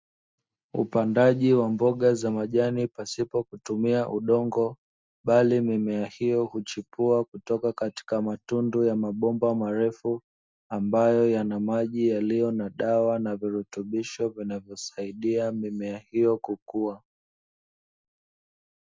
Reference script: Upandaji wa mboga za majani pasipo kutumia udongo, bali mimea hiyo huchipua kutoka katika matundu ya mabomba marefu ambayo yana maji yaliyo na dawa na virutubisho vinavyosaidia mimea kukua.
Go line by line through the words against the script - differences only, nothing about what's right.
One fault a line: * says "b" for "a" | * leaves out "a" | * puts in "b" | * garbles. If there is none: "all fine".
* puts in "hiyo"